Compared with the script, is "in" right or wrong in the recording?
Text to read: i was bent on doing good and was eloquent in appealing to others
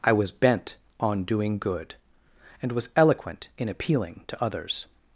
right